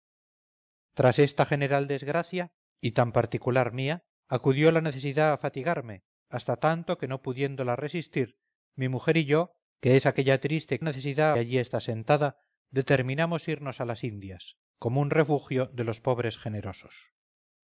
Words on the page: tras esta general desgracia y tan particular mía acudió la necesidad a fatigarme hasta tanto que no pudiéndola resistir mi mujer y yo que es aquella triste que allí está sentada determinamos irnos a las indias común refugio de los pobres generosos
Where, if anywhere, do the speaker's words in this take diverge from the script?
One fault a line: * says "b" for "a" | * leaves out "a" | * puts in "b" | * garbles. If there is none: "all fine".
* says "necesidad" for "que"